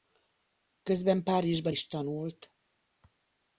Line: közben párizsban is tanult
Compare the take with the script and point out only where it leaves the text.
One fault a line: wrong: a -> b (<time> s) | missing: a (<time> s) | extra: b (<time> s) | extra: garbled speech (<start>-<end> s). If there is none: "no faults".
no faults